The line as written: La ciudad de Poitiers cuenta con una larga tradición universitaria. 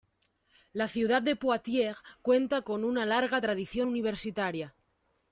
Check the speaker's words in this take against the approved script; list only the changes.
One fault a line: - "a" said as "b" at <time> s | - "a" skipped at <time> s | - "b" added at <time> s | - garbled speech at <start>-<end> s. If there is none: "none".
none